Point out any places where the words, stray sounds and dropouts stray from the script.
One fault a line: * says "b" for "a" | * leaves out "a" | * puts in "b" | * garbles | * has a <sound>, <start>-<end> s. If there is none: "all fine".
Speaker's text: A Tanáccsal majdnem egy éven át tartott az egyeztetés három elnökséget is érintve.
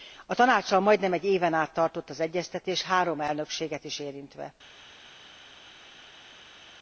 all fine